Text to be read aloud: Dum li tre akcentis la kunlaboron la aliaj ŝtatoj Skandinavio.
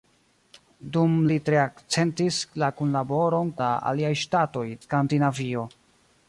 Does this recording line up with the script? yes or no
yes